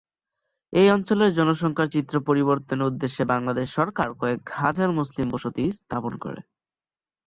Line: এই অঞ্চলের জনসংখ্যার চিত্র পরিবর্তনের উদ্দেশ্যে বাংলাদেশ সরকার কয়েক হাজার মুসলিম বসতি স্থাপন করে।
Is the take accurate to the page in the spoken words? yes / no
yes